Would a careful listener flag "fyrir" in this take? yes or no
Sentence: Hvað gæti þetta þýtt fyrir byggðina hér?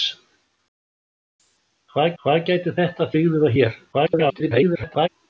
yes